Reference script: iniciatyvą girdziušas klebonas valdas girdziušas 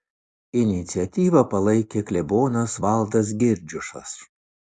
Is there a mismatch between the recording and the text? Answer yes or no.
yes